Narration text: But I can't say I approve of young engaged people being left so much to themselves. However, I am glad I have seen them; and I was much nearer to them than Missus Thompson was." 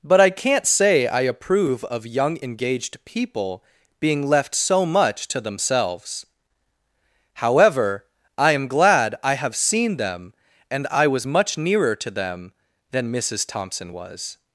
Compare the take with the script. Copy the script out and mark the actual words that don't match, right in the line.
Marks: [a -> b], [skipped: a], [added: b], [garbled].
But I can't say I approve of young engaged people being left so much to themselves. However, I am glad I have seen them; and I was much nearer to them than Missus Thompson was."